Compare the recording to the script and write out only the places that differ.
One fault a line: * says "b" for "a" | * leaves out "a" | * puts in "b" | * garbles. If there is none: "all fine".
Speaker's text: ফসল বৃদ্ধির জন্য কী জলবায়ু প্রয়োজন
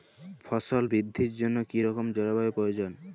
* puts in "রকম"